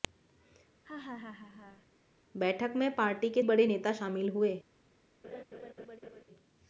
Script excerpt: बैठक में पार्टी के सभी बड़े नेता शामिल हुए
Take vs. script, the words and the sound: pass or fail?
fail